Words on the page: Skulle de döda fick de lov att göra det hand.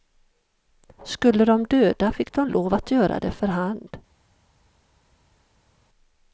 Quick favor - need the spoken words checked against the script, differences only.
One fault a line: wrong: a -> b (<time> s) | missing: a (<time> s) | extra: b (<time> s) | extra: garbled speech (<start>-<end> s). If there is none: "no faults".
extra: för (3.3 s)